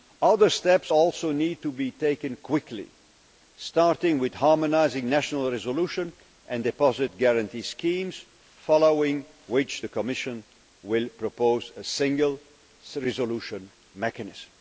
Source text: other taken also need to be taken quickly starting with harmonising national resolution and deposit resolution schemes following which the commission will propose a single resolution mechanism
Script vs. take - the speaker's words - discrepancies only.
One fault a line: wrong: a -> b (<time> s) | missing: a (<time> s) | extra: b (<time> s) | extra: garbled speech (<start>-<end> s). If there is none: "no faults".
wrong: taken -> steps (0.5 s)
wrong: resolution -> guarantee (7.2 s)